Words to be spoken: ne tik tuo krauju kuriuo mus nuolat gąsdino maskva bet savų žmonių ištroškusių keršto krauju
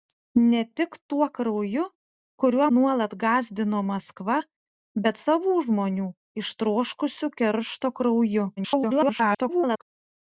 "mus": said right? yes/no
no